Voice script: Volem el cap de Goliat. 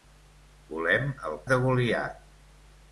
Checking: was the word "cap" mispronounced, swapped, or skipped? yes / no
yes